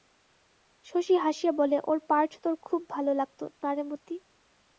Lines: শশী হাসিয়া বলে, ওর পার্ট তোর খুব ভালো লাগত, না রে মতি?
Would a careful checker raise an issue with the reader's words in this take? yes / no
no